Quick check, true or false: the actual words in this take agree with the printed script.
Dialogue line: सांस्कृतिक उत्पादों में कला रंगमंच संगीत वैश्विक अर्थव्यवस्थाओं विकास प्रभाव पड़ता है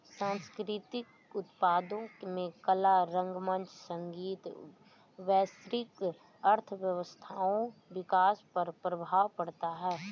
false